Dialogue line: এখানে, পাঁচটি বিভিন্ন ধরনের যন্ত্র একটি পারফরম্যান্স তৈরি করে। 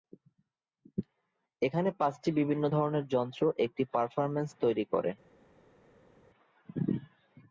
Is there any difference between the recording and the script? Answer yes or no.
no